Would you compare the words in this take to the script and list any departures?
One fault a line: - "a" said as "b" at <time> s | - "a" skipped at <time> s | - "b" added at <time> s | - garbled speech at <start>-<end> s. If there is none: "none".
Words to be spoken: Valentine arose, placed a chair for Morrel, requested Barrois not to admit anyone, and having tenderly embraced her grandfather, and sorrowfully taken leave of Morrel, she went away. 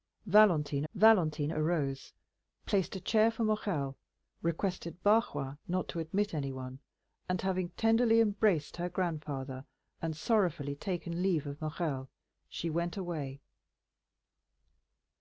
- "valentine" added at 0.9 s